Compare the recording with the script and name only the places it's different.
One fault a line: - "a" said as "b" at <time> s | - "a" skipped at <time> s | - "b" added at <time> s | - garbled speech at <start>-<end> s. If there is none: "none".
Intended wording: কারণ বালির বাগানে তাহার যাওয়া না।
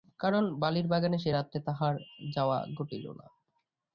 - "সে রাত্রে" added at 1.2 s
- "ঘটিল" added at 2.8 s